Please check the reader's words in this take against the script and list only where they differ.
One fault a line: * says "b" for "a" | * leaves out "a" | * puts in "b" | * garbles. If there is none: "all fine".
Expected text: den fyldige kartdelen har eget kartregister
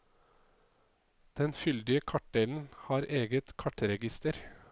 all fine